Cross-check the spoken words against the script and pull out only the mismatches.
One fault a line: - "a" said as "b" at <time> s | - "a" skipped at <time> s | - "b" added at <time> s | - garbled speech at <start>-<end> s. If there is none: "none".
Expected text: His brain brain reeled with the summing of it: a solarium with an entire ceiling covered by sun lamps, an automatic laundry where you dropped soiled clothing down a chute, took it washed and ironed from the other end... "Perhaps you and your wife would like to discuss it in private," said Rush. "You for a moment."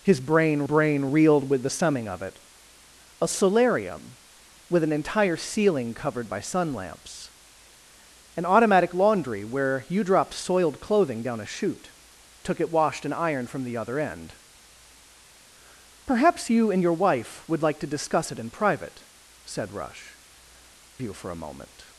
none